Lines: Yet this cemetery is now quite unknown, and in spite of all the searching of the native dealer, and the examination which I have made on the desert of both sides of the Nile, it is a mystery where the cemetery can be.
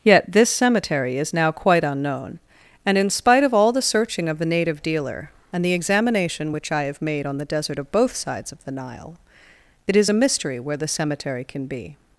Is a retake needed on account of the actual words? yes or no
no